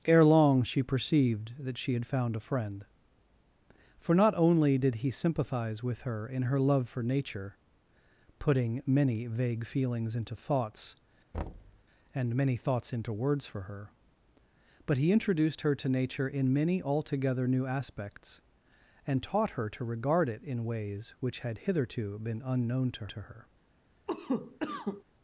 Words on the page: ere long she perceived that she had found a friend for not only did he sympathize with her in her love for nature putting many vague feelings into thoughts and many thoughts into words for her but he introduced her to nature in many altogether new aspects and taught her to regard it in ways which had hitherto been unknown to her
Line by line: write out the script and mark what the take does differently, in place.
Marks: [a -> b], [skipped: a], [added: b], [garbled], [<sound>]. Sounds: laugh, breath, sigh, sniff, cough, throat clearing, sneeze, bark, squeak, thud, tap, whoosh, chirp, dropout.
ere long she perceived that she had found a friend for not only did he sympathize with her in her love for nature putting many vague feelings into thoughts [thud] and many thoughts into words for her but he introduced her to nature in many altogether new aspects and taught her to regard it in ways which had hitherto been unknown to [added: to] her [cough]